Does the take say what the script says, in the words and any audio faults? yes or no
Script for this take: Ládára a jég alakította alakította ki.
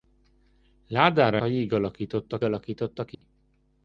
no